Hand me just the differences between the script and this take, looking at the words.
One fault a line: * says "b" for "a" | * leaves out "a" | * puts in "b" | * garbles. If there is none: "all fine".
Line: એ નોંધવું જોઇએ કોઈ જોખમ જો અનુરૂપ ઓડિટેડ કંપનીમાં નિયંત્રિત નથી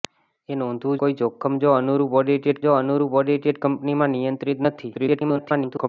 * leaves out "જોઇએ"
* puts in "જો અનુરૂપ ઓડિટેડ"
* garbles